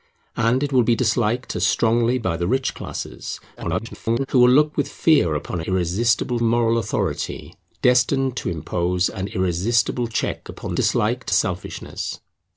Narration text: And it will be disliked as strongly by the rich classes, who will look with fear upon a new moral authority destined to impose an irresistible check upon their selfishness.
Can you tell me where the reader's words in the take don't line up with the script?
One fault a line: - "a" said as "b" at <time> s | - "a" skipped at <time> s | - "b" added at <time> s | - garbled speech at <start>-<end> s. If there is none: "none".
- garbled speech at 3.6-4.3 s
- "new" said as "irresistible" at 5.6 s
- "their" said as "disliked" at 10.7 s